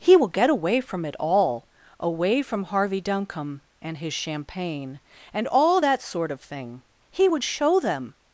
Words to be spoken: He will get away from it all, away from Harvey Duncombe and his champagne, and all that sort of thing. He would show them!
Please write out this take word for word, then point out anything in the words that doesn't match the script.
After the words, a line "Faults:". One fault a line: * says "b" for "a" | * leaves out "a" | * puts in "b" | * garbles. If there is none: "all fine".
He will get away from it all, away from Harvey Duncombe and his champagne, and all that sort of thing. He would show them!
Faults:
all fine